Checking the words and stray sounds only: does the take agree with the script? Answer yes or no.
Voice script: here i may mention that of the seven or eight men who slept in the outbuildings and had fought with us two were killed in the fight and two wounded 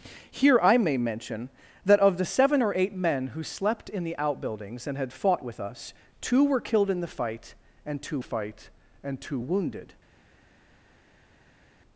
no